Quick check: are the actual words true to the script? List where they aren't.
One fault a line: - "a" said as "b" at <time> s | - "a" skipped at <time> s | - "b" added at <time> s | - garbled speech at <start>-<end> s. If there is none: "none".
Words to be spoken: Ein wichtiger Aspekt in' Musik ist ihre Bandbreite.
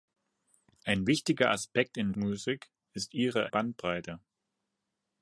none